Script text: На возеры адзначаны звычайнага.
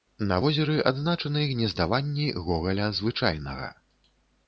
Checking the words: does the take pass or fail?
fail